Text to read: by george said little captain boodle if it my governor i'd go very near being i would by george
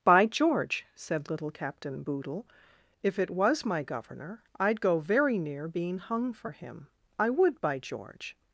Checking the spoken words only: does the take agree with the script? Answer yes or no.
no